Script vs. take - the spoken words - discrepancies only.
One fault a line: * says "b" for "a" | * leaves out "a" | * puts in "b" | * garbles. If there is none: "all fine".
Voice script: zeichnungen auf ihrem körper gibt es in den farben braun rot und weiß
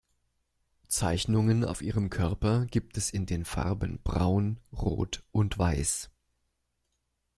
all fine